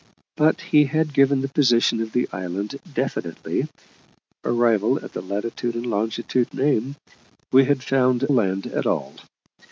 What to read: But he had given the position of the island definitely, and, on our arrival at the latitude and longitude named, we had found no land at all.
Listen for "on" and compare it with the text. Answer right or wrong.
wrong